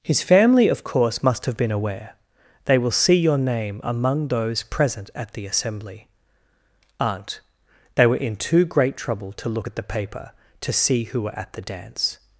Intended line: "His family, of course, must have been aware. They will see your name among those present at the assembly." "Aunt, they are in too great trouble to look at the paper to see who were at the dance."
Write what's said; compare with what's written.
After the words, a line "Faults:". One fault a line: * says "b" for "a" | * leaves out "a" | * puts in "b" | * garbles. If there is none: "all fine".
"His family, of course, must have been aware. They will see your name among those present at the assembly." "Aunt, they were in too great trouble to look at the paper to see who were at the dance."
Faults:
* says "were" for "are"